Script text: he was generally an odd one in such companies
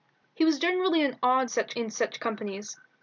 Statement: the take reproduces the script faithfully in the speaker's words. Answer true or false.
false